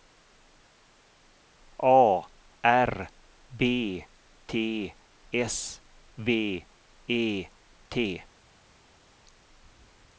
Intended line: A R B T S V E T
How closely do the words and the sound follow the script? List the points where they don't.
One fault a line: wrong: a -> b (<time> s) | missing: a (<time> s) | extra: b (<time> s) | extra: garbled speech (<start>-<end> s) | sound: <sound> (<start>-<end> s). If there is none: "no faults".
no faults